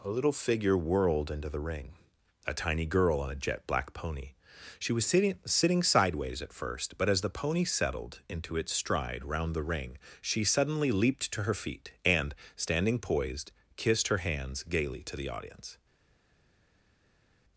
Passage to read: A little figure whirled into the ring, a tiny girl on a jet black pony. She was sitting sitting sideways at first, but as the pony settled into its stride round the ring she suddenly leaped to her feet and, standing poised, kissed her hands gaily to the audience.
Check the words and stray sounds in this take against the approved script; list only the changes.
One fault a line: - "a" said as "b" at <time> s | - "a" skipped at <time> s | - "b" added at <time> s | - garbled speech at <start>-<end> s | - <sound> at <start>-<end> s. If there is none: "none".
none